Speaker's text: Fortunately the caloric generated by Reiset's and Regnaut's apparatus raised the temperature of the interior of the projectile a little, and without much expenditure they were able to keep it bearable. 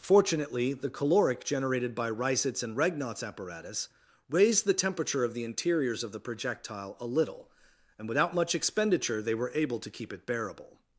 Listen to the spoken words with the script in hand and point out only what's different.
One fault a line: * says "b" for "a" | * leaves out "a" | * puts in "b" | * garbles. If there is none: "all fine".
* says "interiors" for "interior"